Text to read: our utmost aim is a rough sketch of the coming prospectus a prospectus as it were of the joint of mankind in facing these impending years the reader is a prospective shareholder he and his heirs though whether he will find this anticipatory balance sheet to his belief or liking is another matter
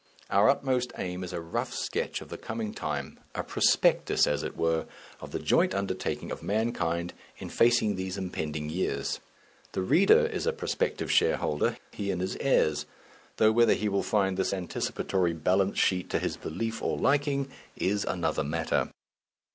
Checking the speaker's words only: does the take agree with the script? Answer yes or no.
no